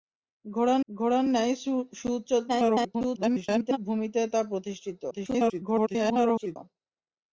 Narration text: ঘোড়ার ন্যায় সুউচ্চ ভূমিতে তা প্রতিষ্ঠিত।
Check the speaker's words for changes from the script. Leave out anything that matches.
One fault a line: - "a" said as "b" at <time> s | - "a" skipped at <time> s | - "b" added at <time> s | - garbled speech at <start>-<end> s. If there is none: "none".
- "ঘোড়ার" added at 0.9 s
- garbled speech at 2.5-3.8 s
- garbled speech at 5.1-6.6 s